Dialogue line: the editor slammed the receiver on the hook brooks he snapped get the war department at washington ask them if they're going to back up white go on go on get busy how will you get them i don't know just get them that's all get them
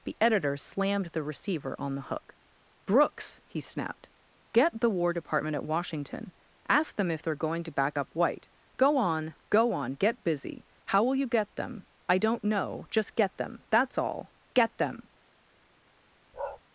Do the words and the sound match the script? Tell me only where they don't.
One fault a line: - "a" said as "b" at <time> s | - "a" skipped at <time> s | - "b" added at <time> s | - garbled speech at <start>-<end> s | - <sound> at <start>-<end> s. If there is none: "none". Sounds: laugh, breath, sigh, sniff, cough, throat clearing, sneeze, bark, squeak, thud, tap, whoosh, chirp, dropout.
- bark at 16.3-16.6 s